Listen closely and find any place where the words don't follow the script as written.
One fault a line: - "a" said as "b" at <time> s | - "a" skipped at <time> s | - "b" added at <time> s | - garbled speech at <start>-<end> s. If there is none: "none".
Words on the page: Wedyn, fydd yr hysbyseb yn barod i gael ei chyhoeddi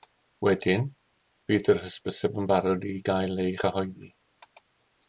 none